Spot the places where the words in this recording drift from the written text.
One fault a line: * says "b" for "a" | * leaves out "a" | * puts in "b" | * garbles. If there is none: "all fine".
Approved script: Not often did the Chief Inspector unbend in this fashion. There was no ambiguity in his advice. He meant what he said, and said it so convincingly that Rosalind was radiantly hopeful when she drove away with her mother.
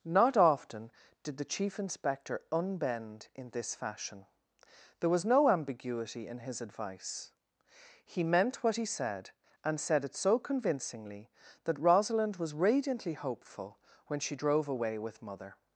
* leaves out "her"